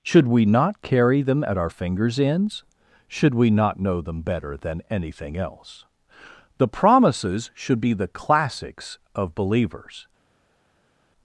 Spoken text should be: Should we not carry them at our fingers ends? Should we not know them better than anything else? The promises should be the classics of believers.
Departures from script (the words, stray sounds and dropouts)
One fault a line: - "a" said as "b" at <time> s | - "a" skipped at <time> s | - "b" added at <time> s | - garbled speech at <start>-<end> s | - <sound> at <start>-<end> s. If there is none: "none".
none